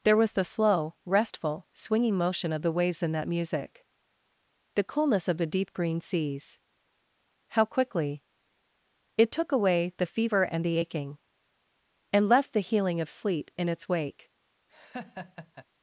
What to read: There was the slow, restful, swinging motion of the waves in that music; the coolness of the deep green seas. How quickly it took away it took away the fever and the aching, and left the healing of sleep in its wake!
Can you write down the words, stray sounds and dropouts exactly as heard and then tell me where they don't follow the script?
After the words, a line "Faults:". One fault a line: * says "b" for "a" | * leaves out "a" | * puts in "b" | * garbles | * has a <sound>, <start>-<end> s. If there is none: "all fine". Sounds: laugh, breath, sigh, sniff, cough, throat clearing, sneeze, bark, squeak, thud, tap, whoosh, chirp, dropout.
There was the slow, restful, swinging motion of the waves in that music; the coolness of the deep green seas. How quickly it took away the fever and the aching, and left the healing of sleep in its wake!
Faults:
* leaves out "it took away"
* has a laugh, 14.7-15.7 s